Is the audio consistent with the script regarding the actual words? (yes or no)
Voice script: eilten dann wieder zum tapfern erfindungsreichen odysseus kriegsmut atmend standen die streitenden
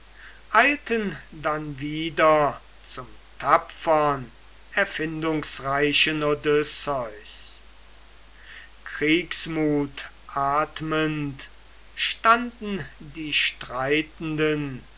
yes